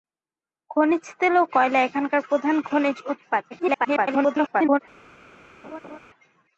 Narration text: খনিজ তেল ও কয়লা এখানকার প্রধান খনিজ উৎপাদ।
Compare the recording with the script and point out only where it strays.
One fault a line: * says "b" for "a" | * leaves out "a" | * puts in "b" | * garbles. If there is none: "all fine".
* garbles